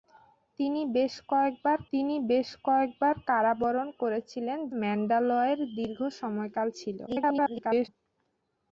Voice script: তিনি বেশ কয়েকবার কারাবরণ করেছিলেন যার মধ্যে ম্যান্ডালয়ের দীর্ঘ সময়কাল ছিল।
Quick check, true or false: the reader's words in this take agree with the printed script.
false